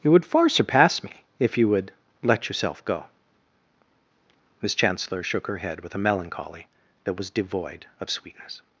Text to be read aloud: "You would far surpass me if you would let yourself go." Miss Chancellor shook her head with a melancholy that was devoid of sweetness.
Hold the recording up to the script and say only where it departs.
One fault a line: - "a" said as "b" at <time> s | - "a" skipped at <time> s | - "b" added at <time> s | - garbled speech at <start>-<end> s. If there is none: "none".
none